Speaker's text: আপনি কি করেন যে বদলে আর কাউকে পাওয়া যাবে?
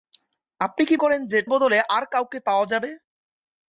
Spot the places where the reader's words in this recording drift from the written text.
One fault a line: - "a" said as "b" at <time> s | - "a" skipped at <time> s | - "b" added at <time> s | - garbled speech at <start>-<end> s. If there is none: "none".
none